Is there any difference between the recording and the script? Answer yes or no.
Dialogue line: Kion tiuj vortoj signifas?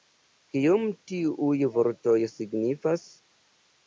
no